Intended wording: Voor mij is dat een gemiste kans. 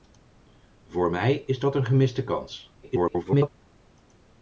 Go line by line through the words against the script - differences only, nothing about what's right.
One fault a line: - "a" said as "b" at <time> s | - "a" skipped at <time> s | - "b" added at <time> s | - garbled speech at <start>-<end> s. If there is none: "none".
- garbled speech at 2.8-3.5 s